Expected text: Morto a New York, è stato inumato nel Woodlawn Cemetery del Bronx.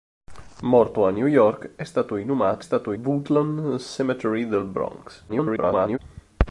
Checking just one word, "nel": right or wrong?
wrong